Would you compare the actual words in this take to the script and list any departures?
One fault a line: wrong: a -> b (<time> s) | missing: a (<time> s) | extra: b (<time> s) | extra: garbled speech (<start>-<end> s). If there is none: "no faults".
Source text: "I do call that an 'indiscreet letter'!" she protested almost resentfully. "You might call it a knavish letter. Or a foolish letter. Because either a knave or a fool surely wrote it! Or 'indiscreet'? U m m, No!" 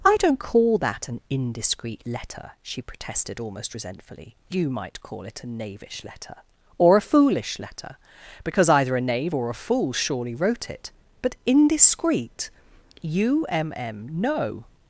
wrong: do -> don't (0.2 s)
wrong: Or -> But (11.2 s)